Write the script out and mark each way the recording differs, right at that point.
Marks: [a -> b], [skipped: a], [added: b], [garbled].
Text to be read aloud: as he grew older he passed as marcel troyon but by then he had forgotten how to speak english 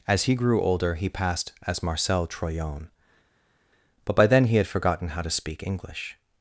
as he grew older he passed as marcel troyon but by then he had forgotten how to speak english